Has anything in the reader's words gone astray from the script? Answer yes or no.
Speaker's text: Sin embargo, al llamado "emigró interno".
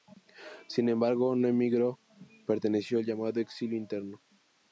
yes